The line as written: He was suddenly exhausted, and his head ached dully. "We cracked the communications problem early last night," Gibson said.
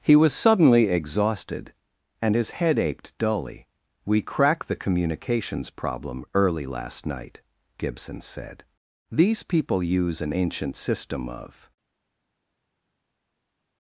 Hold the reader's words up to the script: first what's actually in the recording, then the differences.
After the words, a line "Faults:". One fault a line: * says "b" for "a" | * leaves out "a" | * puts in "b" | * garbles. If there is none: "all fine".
He was suddenly exhausted, and his head ached dully. "We cracked the communications problem early last night," Gibson said. "These people use an ancient system of
Faults:
* puts in "These people use an ancient system of"